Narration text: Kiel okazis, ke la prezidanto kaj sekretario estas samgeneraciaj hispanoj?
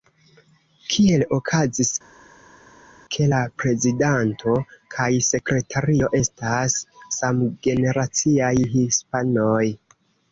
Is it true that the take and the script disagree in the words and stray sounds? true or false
false